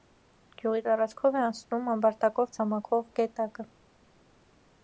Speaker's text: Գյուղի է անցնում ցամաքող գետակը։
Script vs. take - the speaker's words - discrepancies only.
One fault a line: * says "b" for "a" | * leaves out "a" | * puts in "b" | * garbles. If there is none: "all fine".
* puts in "տարածքով"
* puts in "ամբարտակով"